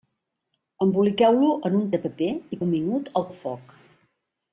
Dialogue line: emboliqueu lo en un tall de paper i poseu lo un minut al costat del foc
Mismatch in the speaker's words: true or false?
true